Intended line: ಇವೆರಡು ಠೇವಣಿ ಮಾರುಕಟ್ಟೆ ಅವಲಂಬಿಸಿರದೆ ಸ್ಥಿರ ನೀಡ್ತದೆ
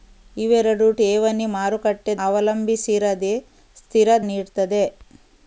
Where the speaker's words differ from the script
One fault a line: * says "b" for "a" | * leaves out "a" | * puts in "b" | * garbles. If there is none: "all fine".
all fine